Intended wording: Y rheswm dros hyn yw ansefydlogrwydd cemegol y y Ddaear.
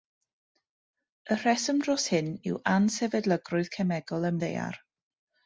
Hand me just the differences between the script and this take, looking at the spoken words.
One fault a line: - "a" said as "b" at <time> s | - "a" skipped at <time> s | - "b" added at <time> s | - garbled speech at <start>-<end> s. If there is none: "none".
none